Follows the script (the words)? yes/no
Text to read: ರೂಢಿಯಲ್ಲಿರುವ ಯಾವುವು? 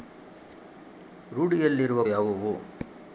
yes